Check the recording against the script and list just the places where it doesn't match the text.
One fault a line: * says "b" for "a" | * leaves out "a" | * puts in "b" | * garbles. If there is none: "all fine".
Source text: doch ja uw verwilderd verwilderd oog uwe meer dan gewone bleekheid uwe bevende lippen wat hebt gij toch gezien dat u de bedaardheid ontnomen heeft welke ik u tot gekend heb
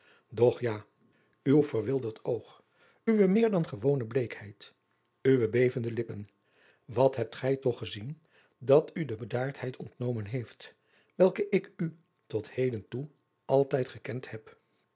* leaves out "verwilderd"
* puts in "heden toe altijd"